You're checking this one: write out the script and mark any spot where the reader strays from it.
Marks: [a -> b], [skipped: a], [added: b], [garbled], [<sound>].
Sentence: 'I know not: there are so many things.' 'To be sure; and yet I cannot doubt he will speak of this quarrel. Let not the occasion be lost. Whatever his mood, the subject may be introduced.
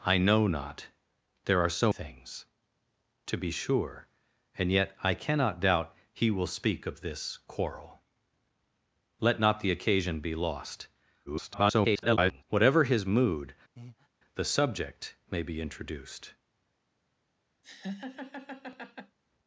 'I know not: there are so [skipped: many] things.' 'To be sure; and yet I cannot doubt he will speak of this quarrel. Let not the occasion be lost. [garbled] Whatever his mood, [breath] the subject may be introduced. [laugh]